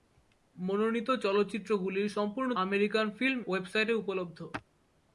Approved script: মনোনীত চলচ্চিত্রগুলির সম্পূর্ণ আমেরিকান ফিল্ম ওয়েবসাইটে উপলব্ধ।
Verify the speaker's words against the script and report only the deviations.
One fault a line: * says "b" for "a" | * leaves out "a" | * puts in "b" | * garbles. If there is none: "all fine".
all fine